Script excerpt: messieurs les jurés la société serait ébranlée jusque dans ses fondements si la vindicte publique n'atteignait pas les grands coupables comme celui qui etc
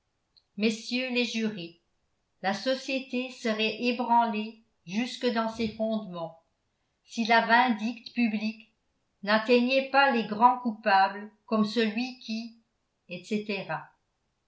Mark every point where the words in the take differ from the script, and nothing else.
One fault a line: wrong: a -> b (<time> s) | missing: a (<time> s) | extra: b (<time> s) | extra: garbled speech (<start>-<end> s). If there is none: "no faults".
no faults